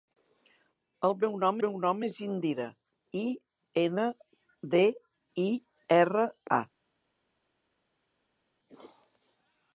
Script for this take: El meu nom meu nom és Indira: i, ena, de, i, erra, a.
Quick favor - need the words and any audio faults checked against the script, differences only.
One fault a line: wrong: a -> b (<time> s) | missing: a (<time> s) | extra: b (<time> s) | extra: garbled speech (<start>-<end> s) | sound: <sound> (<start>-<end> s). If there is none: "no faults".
no faults